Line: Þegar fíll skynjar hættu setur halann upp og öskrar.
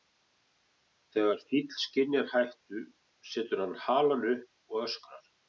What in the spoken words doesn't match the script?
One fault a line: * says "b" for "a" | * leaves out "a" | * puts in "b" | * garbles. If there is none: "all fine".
* puts in "hann"